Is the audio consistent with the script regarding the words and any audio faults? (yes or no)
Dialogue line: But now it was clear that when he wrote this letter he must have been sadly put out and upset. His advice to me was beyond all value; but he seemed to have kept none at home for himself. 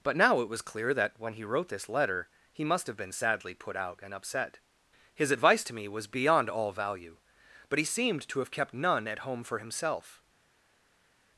yes